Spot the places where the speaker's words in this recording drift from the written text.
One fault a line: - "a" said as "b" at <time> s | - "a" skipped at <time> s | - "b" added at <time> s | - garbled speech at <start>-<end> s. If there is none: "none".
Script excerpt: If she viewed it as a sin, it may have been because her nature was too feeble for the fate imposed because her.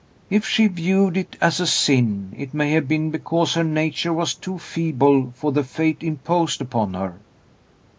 - "because" said as "upon" at 6.6 s